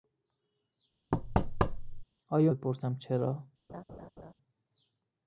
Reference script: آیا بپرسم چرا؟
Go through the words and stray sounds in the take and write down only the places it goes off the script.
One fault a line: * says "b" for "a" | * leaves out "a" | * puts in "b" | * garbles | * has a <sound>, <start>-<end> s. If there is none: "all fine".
* has a thud, 1.1-2.0 s
* has a laugh, 3.7-4.3 s